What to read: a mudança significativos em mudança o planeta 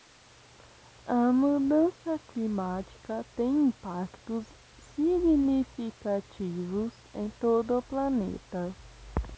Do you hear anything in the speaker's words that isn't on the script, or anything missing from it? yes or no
yes